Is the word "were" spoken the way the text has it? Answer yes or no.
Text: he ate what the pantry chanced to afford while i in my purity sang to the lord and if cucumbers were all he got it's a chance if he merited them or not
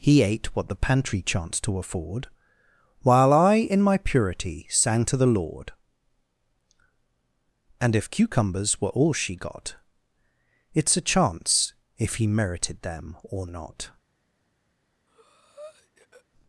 yes